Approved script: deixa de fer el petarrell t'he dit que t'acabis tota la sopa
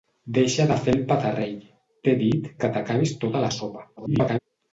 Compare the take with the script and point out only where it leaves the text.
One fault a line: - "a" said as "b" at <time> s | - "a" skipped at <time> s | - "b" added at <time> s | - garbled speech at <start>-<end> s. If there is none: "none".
- garbled speech at 4.0-4.4 s